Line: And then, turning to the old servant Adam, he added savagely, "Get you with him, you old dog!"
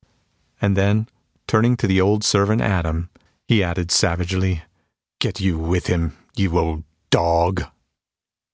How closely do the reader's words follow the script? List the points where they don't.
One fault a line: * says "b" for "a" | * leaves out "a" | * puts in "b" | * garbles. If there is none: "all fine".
all fine